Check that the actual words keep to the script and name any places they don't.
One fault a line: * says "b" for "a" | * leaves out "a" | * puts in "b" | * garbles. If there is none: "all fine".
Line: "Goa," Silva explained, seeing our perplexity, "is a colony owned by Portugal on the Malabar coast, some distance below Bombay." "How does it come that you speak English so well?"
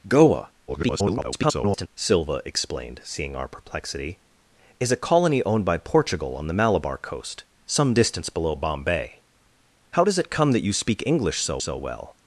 * garbles
* puts in "so"